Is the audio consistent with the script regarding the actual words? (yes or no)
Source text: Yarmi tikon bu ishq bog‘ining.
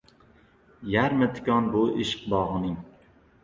yes